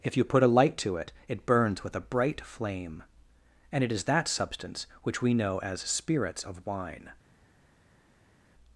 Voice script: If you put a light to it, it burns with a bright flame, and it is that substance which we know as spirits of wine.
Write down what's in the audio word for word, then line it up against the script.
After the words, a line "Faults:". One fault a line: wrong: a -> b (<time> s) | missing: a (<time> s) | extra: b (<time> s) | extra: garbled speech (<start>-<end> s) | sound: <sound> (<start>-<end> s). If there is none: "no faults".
If you put a light to it, it burns with a bright flame, and it is that substance which we know as spirits of wine.
Faults:
no faults